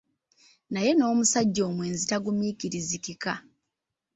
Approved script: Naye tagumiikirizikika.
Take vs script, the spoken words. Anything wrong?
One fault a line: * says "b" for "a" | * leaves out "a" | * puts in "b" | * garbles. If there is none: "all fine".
* puts in "n'omusajja omwenzi"